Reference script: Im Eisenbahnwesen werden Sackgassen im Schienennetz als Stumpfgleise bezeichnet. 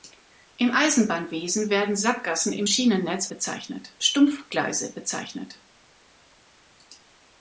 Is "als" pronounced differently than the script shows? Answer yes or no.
yes